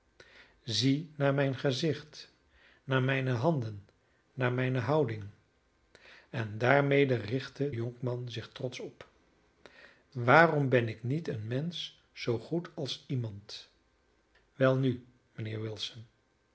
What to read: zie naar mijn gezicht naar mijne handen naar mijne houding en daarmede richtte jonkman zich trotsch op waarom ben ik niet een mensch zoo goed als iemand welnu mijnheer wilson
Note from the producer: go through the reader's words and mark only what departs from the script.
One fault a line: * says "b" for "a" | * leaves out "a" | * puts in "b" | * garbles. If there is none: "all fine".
all fine